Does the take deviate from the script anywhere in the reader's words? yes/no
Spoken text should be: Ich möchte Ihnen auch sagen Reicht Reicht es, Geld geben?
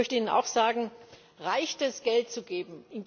yes